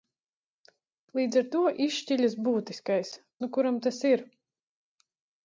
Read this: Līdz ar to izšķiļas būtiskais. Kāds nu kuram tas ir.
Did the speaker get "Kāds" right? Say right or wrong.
wrong